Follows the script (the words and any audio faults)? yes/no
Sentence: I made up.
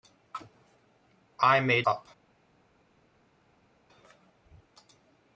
yes